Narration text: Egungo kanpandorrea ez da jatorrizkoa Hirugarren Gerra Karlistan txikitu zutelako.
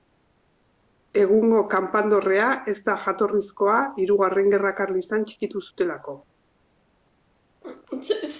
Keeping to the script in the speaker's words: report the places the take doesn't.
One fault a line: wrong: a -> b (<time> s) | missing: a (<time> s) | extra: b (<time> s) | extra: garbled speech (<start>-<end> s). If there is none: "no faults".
no faults